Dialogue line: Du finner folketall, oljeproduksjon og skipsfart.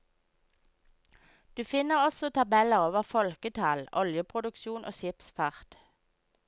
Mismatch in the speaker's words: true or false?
true